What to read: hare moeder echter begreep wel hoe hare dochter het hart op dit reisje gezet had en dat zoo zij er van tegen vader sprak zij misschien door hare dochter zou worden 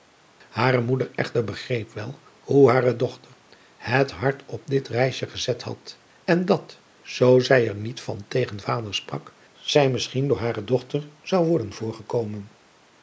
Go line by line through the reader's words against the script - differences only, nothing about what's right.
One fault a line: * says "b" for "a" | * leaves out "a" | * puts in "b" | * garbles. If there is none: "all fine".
* puts in "niet"